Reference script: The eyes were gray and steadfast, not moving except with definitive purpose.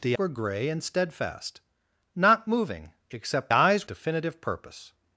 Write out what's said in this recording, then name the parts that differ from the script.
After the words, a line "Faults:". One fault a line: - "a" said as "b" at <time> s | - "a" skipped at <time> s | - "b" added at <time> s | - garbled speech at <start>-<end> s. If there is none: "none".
The were gray and steadfast, not moving except eyes definitive purpose.
Faults:
- "eyes" skipped at 0.2 s
- "with" said as "eyes" at 3.5 s